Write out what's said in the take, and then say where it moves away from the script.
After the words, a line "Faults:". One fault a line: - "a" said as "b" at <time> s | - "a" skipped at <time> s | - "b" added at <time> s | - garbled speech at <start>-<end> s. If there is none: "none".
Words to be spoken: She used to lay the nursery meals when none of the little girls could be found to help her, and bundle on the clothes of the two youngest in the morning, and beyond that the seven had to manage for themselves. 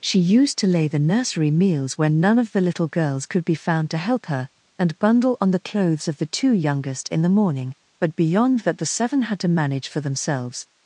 She used to lay the nursery meals when none of the little girls could be found to help her, and bundle on the clothes of the two youngest in the morning, but beyond that the seven had to manage for themselves.
Faults:
- "and" said as "but" at 8.0 s